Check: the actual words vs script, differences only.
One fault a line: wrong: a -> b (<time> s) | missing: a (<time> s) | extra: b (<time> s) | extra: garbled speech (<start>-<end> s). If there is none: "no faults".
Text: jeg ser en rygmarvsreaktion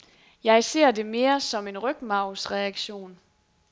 extra: det mere som (0.9 s)